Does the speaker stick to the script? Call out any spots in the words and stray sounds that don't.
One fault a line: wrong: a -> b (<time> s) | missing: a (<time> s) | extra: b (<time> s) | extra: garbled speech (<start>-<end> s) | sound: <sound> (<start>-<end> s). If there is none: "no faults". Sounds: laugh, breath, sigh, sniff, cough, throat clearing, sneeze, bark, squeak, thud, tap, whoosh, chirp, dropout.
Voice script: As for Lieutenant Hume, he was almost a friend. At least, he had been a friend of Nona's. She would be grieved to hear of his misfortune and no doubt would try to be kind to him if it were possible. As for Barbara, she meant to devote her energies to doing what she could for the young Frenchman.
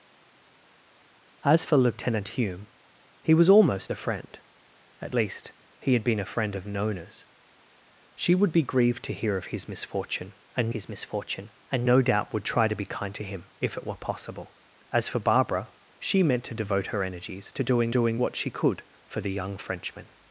extra: his misfortune and (10.7 s)
extra: doing (17.9 s)